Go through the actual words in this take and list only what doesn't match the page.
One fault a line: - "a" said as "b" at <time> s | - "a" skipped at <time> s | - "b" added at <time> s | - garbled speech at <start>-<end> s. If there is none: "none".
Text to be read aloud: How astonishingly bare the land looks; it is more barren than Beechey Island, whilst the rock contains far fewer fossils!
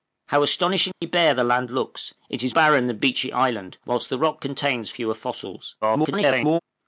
- "more" skipped at 2.5 s
- "far" skipped at 4.9 s
- garbled speech at 5.8-6.6 s